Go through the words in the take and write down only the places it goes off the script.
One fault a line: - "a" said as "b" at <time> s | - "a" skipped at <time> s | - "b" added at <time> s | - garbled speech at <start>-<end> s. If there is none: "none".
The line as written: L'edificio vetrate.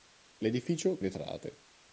none